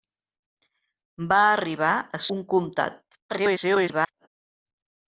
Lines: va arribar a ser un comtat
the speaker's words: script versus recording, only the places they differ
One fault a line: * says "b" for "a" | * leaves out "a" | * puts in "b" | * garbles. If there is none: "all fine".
* leaves out "ser"
* garbles